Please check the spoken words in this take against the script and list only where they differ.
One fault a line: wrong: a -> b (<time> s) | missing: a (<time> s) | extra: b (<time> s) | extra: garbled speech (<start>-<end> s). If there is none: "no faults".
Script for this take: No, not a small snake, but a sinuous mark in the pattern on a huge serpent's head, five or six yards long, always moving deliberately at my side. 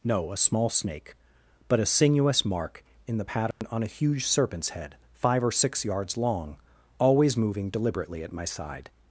missing: not (0.3 s)